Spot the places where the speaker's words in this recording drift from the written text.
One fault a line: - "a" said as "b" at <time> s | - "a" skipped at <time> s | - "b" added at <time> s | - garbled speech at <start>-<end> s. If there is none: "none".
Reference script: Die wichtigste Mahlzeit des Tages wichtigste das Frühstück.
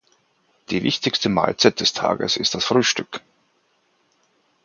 - "wichtigste" said as "ist" at 2.4 s